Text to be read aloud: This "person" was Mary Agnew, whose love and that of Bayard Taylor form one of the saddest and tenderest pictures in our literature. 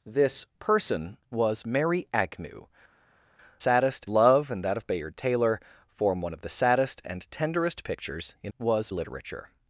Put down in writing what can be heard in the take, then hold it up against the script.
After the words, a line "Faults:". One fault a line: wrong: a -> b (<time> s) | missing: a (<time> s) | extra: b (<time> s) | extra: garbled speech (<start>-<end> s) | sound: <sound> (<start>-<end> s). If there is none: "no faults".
This "person" was Mary Agnew, saddest love and that of Bayard Taylor form one of the saddest and tenderest pictures in was literature.
Faults:
wrong: whose -> saddest (3.6 s)
wrong: our -> was (8.6 s)